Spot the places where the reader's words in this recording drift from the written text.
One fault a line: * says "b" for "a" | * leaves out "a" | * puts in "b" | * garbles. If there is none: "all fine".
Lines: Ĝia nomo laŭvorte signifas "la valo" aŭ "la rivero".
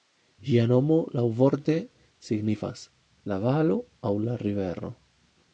all fine